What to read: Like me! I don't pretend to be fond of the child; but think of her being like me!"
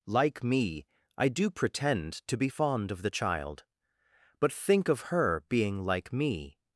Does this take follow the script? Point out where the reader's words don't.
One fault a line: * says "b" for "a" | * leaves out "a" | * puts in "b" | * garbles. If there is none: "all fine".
* says "do" for "don't"